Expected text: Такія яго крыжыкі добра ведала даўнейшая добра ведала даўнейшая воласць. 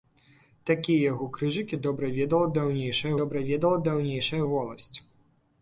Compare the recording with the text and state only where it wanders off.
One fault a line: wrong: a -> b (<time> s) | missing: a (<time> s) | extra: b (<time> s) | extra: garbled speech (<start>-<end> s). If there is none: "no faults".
no faults